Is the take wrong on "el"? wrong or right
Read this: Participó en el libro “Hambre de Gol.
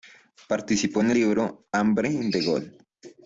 wrong